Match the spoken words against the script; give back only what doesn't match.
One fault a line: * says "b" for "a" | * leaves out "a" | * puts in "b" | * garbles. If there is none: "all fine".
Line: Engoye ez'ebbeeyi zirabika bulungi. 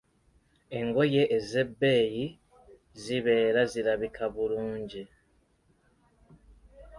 * puts in "zibeera"